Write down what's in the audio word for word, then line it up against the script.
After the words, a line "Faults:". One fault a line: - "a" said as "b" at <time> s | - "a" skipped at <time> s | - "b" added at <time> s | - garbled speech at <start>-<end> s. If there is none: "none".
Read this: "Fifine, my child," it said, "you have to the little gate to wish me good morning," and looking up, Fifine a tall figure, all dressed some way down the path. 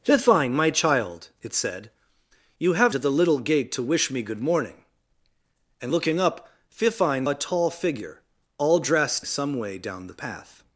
"Fifine, my child," it said, "you have to the little gate to wish me good morning," and looking up, Fifine a tall figure, all dressed some way down the path.
Faults:
none